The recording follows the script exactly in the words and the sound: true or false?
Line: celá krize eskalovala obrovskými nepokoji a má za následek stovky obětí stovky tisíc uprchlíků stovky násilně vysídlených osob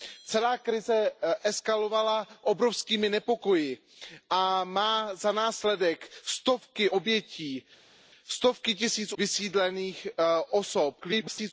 false